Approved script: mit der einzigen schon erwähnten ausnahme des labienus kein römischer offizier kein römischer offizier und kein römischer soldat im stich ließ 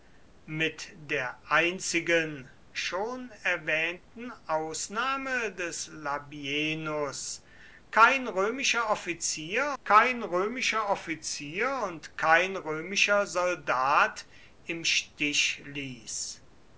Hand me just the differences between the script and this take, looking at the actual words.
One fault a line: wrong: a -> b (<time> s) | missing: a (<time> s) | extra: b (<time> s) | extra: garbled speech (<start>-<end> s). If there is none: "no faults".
no faults